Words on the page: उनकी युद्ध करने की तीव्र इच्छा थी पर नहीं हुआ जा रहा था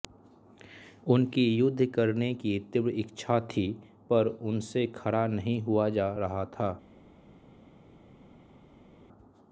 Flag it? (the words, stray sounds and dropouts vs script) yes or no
yes